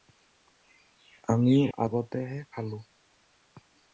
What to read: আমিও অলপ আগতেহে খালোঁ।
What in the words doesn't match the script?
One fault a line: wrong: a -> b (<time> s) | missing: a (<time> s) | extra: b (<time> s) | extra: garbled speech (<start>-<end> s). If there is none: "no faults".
missing: অলপ (1.6 s)